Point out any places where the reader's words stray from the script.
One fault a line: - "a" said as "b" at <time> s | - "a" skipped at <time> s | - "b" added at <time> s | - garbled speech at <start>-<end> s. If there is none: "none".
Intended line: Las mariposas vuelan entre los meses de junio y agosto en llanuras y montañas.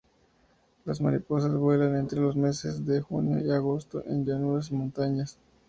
none